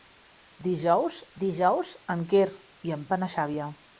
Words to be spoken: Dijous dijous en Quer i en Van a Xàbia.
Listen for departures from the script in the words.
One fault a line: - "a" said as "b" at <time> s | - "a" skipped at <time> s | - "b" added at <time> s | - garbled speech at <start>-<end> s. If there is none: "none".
none